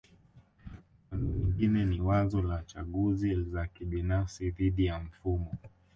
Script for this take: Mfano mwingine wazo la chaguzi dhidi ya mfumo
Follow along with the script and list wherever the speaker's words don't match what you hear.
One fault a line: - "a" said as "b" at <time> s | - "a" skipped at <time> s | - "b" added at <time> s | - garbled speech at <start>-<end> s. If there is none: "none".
- "ni" added at 1.9 s
- "za kibinafsi" added at 3.4 s